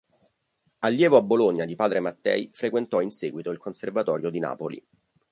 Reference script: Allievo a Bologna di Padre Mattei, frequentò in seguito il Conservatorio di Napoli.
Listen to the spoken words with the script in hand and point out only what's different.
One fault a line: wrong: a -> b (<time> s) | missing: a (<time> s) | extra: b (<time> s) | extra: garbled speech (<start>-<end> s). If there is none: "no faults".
no faults